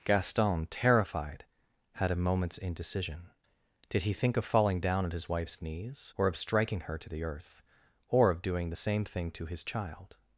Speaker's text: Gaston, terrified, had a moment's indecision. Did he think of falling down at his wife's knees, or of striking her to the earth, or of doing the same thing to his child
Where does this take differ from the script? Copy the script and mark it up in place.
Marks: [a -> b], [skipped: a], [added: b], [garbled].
Gaston, terrified, had a moment's indecision. Did he think of falling down at his wife's knees, or of striking her to the earth, or of doing the same thing to his child